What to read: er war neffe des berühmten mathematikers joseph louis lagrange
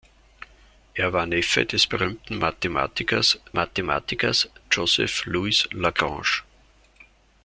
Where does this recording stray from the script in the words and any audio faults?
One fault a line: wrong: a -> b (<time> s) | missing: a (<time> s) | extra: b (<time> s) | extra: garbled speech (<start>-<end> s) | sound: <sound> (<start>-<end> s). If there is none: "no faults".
extra: mathematikers (3.5 s)